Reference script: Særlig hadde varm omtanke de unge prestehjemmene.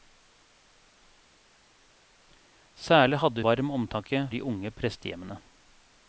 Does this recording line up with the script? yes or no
yes